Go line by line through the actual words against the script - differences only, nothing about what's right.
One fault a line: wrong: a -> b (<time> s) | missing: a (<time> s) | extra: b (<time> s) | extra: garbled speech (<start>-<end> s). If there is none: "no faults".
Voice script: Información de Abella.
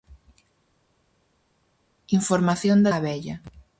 no faults